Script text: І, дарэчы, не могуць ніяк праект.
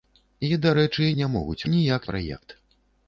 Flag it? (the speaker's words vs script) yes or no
no